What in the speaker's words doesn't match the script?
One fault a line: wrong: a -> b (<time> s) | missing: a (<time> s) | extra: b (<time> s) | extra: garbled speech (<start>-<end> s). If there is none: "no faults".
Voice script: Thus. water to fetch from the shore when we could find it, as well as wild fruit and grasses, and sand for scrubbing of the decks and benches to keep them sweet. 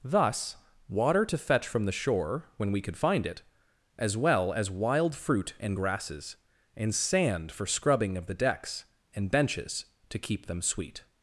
no faults